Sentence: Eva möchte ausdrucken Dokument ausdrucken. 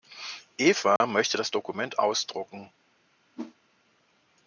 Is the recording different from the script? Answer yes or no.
yes